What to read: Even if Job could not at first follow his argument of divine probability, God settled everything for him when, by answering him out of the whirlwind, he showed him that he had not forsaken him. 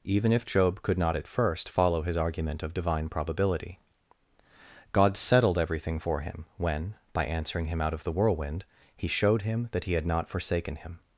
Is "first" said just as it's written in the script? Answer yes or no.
yes